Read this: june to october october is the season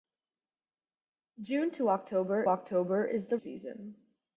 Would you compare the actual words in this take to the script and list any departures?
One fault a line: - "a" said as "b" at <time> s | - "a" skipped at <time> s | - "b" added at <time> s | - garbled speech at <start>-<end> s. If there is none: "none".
none